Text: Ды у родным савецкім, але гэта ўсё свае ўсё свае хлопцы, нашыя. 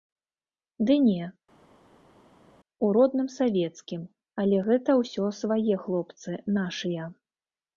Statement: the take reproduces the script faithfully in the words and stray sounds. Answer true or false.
false